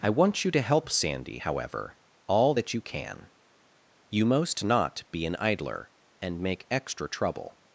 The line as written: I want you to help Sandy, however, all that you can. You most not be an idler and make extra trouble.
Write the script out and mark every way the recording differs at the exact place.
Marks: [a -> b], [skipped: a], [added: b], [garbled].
I want you to help Sandy, however, all that you can. You most not be an idler and make extra trouble.